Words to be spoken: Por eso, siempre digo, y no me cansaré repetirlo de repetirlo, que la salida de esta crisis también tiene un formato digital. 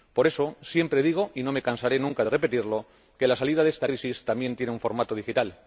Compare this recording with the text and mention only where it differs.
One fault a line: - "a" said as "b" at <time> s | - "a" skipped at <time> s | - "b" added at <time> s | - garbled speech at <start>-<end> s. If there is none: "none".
- "repetirlo" said as "nunca" at 2.0 s